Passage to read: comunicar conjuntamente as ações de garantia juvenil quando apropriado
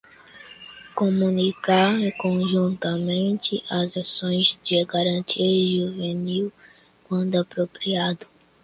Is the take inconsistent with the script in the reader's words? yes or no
no